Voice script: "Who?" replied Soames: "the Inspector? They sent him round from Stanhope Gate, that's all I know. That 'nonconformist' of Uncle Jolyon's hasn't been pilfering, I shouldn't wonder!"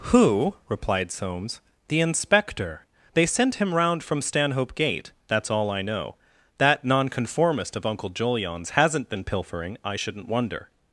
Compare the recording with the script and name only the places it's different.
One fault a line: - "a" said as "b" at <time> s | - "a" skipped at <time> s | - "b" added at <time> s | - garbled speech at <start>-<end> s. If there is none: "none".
none